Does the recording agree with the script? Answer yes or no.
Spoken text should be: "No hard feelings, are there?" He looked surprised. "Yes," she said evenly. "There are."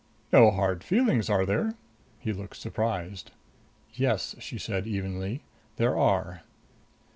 yes